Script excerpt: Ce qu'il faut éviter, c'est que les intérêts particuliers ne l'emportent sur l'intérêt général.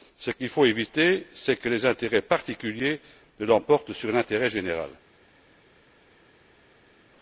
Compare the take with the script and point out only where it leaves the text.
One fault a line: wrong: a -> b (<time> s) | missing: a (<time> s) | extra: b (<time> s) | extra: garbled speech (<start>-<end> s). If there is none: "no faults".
no faults